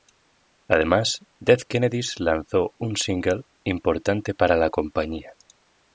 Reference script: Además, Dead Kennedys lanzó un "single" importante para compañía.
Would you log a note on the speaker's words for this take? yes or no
yes